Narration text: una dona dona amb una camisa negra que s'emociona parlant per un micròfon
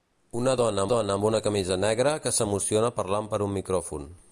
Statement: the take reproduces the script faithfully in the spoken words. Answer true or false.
true